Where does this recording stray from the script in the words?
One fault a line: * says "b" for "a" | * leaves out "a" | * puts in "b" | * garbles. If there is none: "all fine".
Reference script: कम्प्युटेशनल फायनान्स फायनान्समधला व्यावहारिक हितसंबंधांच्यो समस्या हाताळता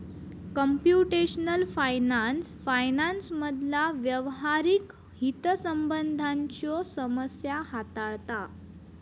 all fine